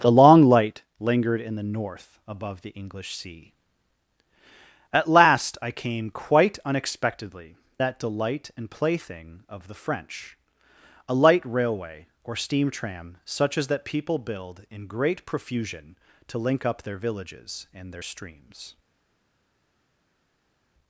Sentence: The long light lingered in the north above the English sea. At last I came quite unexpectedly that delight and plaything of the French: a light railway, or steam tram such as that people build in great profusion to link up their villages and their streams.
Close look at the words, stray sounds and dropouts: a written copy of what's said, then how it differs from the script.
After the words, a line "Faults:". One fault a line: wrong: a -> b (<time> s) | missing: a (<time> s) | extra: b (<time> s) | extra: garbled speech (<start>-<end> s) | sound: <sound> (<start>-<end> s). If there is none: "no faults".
The long light lingered in the north above the English sea. At last I came quite unexpectedly that delight and plaything of the French: a light railway, or steam tram such as that people build in great profusion to link up their villages and their streams.
Faults:
no faults